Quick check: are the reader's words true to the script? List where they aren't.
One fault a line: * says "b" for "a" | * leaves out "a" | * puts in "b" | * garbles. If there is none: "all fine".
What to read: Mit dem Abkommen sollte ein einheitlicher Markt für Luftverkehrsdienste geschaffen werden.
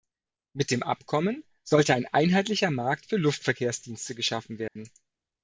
all fine